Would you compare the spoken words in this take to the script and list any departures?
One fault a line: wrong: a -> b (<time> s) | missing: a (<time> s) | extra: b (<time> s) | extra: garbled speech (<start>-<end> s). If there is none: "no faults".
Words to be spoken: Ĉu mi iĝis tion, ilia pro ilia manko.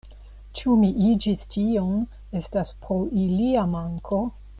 wrong: ilia -> estas (2.4 s)